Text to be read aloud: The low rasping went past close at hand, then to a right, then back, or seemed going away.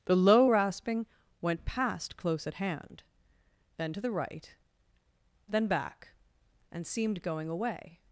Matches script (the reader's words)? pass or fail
fail